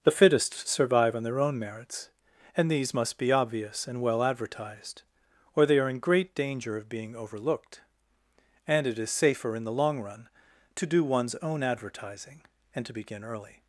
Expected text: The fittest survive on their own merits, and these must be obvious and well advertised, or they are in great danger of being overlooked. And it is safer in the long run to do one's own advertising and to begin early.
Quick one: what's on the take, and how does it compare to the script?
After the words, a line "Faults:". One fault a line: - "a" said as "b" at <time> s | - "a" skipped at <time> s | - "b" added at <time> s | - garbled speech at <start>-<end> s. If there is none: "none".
The fittest survive on their own merits, and these must be obvious and well advertised, or they are in great danger of being overlooked. And it is safer in the long run to do one's own advertising and to begin early.
Faults:
none